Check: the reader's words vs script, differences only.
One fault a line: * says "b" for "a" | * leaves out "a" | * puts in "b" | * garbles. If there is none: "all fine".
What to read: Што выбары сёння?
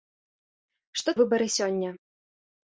all fine